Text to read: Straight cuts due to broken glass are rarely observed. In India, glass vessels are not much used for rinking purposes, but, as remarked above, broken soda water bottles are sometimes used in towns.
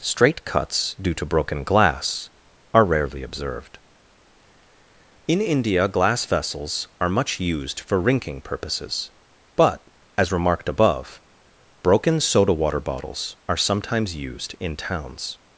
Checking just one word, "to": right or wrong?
right